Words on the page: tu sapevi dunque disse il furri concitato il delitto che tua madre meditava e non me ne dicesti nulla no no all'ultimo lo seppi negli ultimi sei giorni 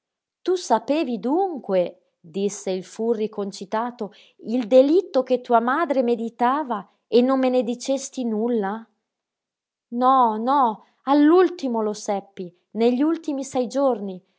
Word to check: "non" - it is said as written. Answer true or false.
true